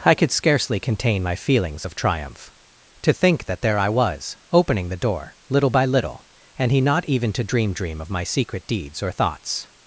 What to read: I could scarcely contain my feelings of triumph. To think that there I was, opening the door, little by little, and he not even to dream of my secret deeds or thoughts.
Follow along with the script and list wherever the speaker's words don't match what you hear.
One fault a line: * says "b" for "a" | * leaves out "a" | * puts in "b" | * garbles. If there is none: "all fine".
* puts in "dream"